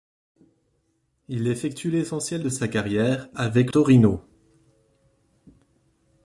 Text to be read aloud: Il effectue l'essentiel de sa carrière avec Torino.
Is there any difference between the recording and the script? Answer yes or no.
no